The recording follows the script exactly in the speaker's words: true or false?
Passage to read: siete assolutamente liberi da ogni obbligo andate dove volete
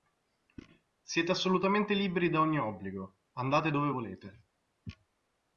true